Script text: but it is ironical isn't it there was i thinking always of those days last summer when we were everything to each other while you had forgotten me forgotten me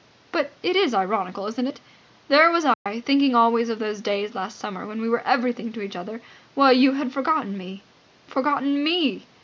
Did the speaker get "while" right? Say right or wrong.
right